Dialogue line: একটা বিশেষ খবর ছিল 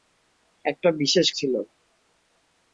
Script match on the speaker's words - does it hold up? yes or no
no